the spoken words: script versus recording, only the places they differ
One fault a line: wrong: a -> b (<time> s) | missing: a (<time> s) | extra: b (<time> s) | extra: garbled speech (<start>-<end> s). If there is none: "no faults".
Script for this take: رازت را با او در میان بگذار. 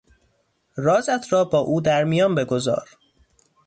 no faults